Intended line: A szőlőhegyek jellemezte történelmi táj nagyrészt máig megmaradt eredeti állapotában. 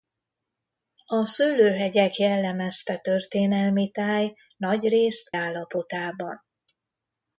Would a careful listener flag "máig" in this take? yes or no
yes